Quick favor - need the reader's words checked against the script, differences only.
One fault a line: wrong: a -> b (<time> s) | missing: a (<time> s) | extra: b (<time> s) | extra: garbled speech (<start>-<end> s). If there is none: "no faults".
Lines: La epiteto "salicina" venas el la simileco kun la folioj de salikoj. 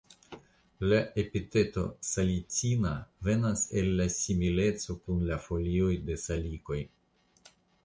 no faults